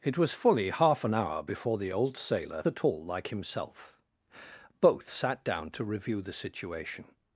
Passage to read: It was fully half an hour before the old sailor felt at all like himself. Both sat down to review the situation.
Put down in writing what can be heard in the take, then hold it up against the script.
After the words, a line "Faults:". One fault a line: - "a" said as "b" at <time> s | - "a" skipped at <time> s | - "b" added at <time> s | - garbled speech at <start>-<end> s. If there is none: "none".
It was fully half an hour before the old sailor at all like himself. Both sat down to review the situation.
Faults:
- "felt" skipped at 2.6 s